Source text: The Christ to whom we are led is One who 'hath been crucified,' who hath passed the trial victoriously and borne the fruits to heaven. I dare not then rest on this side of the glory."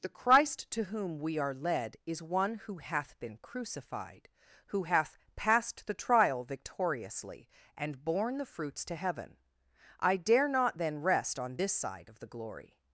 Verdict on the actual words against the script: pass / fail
pass